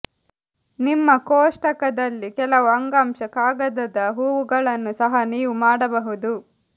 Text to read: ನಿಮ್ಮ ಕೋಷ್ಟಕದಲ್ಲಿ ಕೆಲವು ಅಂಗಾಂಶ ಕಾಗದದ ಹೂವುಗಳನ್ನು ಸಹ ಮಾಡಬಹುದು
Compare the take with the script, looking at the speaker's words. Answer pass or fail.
fail